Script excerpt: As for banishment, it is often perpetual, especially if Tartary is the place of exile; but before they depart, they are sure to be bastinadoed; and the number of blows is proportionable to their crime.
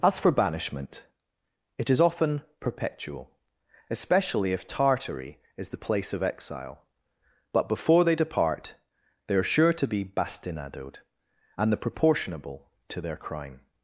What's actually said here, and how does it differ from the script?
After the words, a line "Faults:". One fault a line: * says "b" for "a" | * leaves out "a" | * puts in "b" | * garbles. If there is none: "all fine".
As for banishment, it is often perpetual, especially if Tartary is the place of exile; but before they depart, they are sure to be bastinadoed; and the proportionable to their crime.
Faults:
* leaves out "number of blows is"